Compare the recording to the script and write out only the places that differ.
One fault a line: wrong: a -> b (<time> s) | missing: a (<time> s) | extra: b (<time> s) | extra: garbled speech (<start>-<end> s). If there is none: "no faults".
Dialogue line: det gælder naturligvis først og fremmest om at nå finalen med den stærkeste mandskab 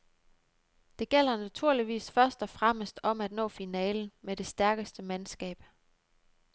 wrong: den -> det (4.4 s)